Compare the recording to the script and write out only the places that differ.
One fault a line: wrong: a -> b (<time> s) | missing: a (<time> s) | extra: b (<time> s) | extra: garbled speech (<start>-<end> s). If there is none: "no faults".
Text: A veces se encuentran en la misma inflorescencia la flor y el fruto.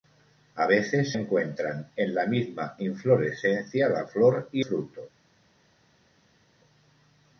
missing: se (1.1 s)
missing: el (4.7 s)